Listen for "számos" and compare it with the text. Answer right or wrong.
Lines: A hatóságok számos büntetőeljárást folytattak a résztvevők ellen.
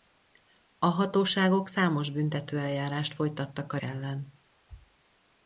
right